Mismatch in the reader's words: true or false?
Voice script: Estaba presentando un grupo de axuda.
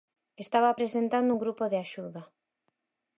false